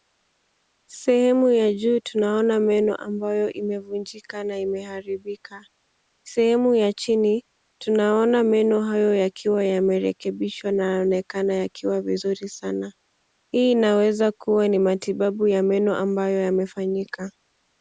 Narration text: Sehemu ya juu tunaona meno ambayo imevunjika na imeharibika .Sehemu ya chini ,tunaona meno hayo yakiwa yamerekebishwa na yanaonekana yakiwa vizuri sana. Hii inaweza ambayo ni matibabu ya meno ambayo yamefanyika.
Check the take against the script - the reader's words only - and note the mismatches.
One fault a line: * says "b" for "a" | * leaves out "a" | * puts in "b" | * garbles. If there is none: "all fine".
* says "kuwa" for "ambayo"